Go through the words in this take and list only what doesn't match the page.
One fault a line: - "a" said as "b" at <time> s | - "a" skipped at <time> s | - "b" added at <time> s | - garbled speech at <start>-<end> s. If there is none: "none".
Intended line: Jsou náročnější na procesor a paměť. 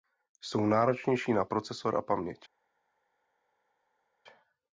none